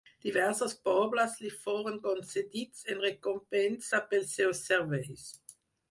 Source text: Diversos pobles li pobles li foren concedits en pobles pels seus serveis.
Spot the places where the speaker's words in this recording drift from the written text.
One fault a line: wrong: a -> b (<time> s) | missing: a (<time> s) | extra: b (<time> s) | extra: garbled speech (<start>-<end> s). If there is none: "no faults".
missing: pobles li (1.5 s)
wrong: pobles -> recompensa (3.1 s)